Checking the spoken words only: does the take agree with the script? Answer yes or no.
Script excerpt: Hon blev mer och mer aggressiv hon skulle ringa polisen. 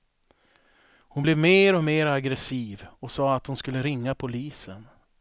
no